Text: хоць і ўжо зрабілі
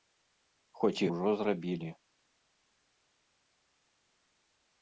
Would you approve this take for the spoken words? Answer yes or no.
yes